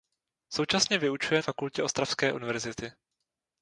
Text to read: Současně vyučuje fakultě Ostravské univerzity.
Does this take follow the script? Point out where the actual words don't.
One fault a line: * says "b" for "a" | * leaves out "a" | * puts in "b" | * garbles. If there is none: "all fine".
all fine